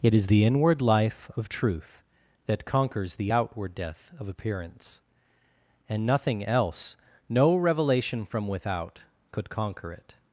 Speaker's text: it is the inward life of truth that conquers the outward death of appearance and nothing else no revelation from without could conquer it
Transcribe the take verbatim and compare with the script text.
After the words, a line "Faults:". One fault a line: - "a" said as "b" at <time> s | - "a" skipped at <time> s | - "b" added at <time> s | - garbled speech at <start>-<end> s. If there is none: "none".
it is the inward life of truth that conquers the outward death of appearance and nothing else no revelation from without could conquer it
Faults:
none